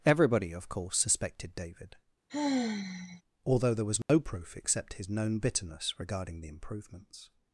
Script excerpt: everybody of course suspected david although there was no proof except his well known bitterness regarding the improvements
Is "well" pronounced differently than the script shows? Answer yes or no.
yes